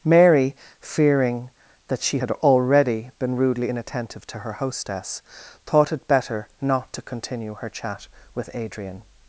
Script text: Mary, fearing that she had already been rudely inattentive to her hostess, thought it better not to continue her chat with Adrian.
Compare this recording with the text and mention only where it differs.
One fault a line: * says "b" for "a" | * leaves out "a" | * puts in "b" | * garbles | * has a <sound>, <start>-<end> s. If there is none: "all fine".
all fine